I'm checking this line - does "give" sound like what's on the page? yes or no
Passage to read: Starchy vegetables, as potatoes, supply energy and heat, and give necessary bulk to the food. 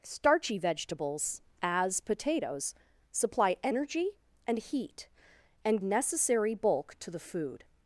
no